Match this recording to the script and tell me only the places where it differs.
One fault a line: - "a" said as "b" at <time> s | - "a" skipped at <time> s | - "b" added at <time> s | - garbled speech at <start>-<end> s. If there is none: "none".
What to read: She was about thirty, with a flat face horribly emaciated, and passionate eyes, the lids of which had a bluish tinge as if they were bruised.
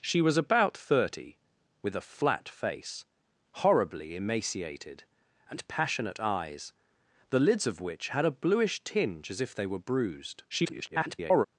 - garbled speech at 10.5-11.5 s